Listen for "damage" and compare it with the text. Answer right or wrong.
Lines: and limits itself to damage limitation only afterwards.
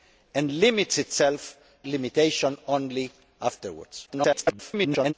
wrong